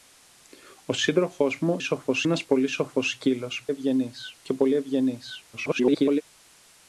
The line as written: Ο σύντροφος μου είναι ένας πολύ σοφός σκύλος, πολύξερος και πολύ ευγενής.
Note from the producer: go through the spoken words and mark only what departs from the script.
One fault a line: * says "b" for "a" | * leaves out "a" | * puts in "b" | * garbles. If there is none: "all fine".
* says "σοφός" for "είναι"
* says "ευγενής" for "πολύξερος"
* garbles